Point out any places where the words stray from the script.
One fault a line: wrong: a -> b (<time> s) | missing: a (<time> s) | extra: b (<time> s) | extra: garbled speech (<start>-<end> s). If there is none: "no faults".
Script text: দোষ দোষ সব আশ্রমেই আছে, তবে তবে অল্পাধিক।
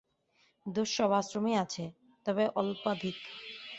missing: দোষ (0.9 s)
missing: তবে (2.4 s)